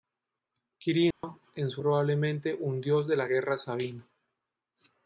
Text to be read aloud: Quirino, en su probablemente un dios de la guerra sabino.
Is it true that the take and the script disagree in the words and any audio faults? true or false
true